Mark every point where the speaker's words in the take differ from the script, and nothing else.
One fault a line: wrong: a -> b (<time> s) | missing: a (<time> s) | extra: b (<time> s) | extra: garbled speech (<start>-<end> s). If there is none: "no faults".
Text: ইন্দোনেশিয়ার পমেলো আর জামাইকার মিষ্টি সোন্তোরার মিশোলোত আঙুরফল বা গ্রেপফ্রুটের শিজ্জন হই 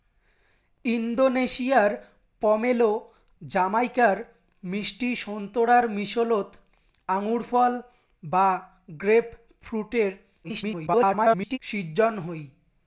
missing: আর (2.9 s)
extra: garbled speech (10.4-11.6 s)